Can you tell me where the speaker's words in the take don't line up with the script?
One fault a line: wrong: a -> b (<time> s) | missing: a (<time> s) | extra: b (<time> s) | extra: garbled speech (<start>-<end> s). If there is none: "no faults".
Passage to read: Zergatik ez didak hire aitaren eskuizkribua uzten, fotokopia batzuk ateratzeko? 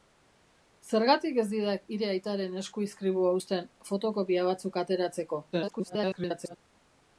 extra: garbled speech (5.5-6.6 s)